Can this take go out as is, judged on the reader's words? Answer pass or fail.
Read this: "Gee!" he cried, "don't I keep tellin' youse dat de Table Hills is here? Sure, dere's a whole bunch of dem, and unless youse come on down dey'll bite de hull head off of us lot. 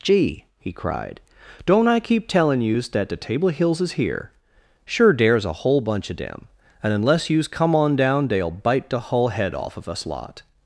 pass